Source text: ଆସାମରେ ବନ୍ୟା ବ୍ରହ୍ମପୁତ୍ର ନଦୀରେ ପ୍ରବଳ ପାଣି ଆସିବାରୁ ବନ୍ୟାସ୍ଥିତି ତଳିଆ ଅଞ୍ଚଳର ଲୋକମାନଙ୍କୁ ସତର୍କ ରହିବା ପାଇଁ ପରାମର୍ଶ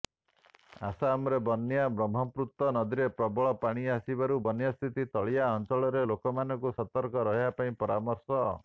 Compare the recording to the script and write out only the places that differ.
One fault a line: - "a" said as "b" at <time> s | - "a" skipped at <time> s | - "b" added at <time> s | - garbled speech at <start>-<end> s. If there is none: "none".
none